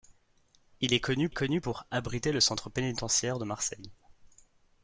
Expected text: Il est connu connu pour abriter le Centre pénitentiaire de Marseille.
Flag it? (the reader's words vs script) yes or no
no